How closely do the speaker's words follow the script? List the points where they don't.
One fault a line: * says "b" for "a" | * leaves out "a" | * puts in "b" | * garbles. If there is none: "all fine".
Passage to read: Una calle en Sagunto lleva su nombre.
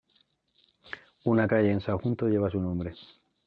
all fine